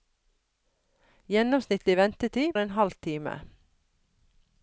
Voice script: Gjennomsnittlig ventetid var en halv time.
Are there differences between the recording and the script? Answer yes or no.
yes